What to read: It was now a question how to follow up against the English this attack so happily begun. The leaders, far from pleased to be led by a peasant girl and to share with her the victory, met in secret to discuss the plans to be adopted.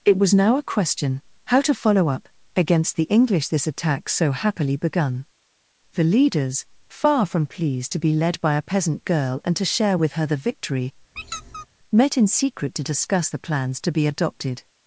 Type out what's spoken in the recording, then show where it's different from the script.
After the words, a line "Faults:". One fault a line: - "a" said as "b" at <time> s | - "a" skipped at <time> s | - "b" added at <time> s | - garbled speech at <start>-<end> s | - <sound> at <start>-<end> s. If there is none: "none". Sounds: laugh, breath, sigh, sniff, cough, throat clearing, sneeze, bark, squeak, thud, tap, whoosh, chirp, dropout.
It was now a question how to follow up against the English this attack so happily begun. The leaders, far from pleased to be led by a peasant girl and to share with her the victory, met in secret to discuss the plans to be adopted.
Faults:
- squeak at 11.2-11.7 s